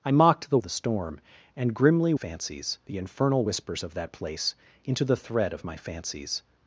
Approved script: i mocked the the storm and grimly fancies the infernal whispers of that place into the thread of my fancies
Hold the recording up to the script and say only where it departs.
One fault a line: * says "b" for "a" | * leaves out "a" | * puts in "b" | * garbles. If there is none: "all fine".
all fine